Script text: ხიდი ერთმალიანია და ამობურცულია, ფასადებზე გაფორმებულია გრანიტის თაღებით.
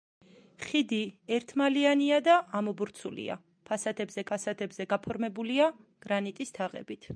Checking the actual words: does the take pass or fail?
fail